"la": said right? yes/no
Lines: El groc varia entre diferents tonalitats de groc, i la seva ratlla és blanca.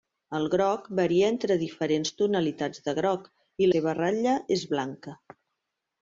no